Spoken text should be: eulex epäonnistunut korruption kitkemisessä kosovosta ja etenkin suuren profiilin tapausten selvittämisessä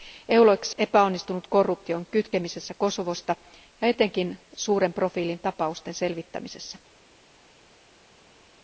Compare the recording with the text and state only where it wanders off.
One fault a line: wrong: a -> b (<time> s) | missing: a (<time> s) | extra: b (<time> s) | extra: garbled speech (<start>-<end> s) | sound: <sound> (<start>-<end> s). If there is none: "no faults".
no faults